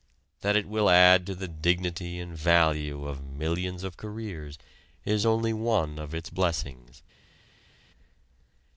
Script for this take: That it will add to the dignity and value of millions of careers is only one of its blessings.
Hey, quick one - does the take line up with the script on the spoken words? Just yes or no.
yes